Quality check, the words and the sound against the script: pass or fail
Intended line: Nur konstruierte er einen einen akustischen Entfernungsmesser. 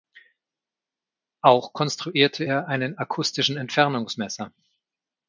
fail